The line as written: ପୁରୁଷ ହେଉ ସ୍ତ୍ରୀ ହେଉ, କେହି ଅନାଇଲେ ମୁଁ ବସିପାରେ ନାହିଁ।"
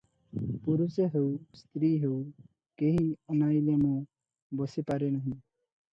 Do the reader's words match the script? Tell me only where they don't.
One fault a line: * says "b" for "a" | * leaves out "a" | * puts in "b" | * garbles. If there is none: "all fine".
all fine